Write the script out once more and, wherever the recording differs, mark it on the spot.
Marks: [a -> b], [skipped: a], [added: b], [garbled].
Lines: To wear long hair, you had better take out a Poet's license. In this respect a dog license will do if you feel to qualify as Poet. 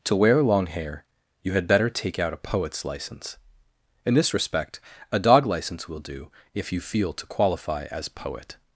To wear long hair, you had better take out a Poet's license. In this respect a dog license will do if you feel to qualify as Poet.